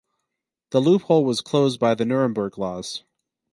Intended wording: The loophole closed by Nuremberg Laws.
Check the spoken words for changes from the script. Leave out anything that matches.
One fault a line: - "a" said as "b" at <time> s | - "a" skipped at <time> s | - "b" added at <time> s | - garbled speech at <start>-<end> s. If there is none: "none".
- "was" added at 1.2 s
- "the" added at 1.9 s